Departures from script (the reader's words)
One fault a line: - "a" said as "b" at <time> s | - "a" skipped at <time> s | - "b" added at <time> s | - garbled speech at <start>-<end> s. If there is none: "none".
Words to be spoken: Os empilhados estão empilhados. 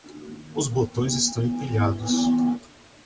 - "empilhados" said as "botões" at 0.7 s